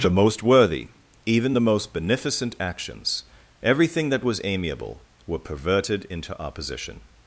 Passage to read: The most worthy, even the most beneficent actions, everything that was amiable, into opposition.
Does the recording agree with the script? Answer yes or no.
no